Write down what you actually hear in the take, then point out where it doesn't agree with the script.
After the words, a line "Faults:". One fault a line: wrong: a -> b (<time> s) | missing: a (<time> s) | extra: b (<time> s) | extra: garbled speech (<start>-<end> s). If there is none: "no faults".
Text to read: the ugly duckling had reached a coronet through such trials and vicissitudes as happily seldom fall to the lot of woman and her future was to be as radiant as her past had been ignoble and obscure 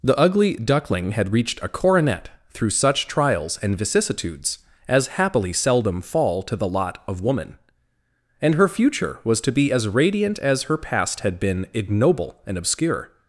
the ugly duckling had reached a coronet through such trials and vicissitudes as happily seldom fall to the lot of woman and her future was to be as radiant as her past had been ignoble and obscure
Faults:
no faults